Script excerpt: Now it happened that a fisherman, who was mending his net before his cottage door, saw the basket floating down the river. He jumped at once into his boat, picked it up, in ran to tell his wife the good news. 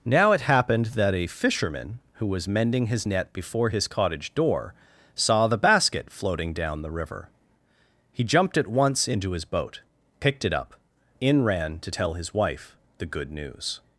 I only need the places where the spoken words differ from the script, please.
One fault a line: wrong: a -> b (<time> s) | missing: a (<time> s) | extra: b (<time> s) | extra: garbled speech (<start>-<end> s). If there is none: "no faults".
no faults